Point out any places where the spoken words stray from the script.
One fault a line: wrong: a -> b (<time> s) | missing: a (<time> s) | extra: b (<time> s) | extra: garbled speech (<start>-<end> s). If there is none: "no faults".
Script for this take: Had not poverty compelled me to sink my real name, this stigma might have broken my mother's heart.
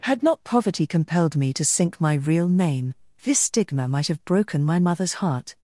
no faults